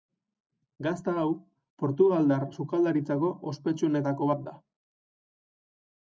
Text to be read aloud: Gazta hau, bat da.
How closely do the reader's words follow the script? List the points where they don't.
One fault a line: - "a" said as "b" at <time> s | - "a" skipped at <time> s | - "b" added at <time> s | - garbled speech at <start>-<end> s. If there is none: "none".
- "portugaldar sukaldaritzako ospetsuenetako" added at 1.8 s